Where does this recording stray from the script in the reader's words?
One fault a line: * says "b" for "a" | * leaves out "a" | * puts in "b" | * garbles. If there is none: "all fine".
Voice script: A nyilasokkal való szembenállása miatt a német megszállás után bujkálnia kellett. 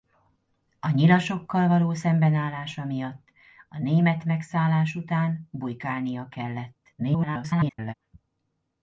* garbles